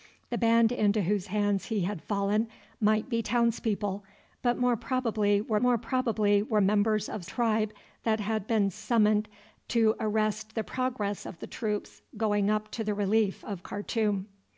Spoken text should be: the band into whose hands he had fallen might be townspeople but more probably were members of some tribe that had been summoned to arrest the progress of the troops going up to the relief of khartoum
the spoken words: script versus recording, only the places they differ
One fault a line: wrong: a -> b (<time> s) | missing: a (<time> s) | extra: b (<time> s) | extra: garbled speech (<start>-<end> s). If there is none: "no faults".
extra: more probably were (5.6 s)
missing: some (7.3 s)